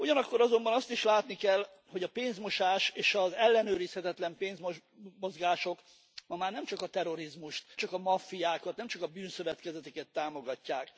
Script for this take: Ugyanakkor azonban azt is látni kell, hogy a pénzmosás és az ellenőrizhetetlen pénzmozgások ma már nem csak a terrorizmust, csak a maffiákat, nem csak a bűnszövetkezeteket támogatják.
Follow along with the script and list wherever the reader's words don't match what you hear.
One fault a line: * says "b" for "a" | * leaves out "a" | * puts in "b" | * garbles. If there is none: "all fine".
all fine